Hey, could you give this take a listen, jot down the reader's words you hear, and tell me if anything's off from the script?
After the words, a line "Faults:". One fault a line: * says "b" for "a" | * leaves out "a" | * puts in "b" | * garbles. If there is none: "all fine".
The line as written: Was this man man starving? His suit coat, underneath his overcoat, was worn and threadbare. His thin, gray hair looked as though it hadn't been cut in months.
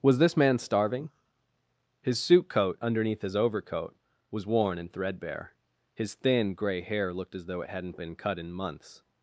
Was this man starving? His suit coat, underneath his overcoat, was worn and threadbare. His thin, gray hair looked as though it hadn't been cut in months.
Faults:
* leaves out "man"